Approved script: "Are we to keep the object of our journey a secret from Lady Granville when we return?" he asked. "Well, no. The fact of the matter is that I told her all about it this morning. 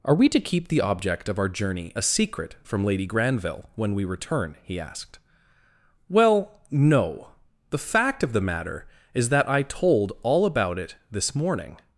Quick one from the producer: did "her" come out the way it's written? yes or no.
no